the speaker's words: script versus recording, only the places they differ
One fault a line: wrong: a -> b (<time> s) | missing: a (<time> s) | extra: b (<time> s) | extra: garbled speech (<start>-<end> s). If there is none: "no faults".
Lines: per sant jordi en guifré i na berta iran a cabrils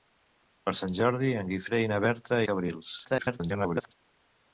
missing: iran (2.4 s)
extra: garbled speech (3.0-3.9 s)